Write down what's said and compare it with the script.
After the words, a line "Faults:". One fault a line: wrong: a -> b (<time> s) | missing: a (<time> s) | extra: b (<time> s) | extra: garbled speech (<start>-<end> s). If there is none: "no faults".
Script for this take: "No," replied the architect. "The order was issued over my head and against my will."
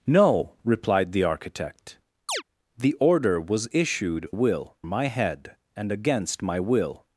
"No," replied the architect. "The order was issued will my head and against my will."
Faults:
wrong: over -> will (4.3 s)